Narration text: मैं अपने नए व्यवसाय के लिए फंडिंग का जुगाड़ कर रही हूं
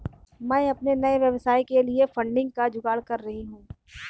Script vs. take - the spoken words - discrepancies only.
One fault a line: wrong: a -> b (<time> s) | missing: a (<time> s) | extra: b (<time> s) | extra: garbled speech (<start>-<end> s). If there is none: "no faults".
no faults